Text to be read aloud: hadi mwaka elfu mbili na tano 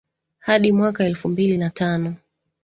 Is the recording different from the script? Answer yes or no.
no